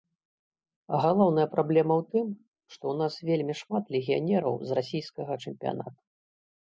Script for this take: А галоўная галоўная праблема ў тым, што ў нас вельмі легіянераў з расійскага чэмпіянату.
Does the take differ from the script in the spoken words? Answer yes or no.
yes